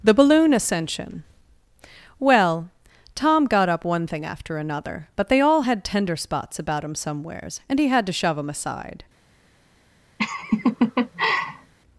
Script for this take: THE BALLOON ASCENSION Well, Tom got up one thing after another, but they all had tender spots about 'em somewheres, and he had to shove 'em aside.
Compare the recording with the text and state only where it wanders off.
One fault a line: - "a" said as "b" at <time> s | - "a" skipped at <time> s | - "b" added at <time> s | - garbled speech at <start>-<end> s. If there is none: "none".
- "em" said as "him" at 6.8 s